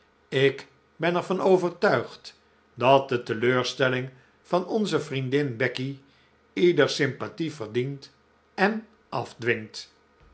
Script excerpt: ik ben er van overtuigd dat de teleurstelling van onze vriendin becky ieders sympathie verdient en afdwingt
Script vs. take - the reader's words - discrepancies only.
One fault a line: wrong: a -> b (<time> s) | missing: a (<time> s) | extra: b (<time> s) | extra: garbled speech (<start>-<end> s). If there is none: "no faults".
no faults